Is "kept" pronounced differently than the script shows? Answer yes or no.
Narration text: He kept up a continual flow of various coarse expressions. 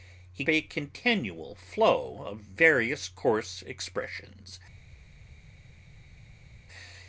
yes